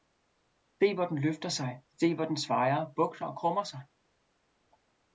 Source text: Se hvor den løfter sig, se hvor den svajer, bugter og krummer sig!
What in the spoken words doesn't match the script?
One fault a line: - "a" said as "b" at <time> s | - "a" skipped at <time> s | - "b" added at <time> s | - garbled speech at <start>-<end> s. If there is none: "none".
none